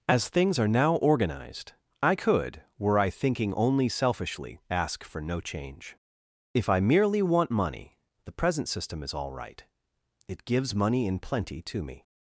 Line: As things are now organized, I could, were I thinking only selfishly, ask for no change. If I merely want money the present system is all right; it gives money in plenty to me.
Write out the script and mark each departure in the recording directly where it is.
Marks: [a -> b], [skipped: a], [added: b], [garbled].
As things are now organized, I could, were I thinking only selfishly, ask for no change. If I merely want money the present system is all right; it gives money in plenty to me.